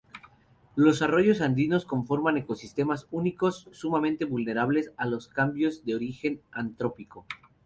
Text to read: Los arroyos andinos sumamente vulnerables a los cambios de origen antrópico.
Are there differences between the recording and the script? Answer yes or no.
yes